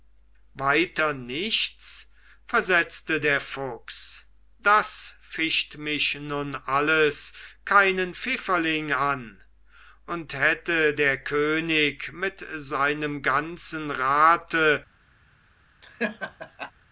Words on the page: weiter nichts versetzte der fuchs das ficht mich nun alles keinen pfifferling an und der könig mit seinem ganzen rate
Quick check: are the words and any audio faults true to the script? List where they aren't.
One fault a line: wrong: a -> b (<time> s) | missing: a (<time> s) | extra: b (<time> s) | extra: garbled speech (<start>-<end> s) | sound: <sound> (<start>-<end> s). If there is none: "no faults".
extra: hätte (10.3 s)
sound: laugh (15.8-16.7 s)